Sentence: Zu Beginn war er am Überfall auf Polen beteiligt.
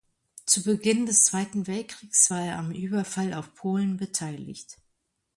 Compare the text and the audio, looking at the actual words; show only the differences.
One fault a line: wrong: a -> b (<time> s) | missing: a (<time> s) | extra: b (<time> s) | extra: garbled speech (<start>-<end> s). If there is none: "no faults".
extra: des Zweiten Weltkriegs (1.1 s)